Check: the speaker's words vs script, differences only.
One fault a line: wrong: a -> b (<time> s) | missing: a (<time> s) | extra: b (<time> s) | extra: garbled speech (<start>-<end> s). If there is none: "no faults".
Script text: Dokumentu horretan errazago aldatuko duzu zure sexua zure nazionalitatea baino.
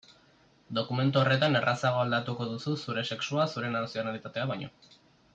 no faults